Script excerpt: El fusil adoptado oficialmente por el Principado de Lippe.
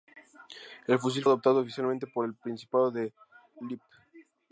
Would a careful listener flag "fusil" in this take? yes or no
no